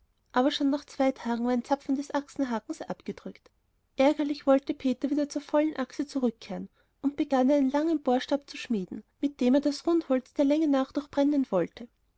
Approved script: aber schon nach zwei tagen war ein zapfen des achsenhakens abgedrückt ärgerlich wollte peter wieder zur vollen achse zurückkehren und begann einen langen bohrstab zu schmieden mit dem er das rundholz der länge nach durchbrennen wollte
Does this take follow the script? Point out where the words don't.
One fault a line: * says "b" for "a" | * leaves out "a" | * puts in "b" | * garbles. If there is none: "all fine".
all fine